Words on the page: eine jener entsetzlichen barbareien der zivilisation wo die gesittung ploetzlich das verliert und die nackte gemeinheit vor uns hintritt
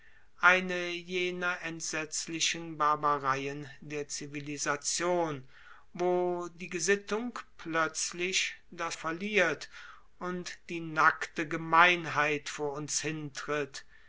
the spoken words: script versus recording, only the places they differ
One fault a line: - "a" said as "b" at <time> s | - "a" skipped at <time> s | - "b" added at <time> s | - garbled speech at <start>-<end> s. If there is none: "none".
none